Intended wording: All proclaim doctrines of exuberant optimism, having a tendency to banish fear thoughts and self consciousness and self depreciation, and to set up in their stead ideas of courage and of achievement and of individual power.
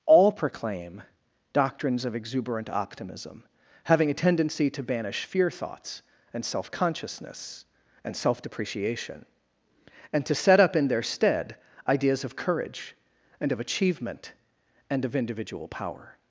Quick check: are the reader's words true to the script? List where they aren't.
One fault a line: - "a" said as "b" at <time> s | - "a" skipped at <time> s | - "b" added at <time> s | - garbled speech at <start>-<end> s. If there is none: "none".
none